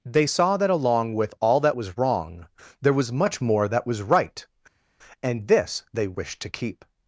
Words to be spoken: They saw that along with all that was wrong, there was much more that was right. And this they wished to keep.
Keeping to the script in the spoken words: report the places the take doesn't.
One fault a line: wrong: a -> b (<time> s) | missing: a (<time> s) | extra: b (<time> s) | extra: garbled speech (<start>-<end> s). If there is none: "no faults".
no faults